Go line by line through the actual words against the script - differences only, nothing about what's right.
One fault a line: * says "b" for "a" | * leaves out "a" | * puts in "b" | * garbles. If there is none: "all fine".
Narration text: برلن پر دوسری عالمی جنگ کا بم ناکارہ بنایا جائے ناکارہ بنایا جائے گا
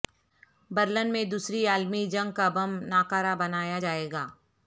* says "میں" for "پر"
* leaves out "ناکارہ بنایا جائے"